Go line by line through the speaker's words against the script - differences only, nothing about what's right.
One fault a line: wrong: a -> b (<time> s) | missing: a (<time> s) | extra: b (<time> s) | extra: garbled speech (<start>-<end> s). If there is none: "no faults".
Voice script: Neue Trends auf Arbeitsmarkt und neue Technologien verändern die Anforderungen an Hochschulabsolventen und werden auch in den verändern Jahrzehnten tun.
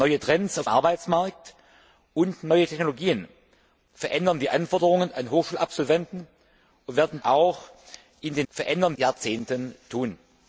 no faults